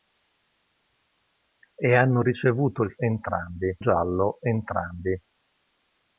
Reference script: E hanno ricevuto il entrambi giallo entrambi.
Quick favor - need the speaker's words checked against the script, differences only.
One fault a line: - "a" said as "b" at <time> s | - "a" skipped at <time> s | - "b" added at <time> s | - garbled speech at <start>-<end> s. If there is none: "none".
none